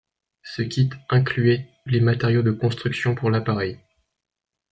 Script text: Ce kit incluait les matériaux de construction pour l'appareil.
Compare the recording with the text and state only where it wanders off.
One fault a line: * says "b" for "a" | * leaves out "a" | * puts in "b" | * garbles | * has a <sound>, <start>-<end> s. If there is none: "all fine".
all fine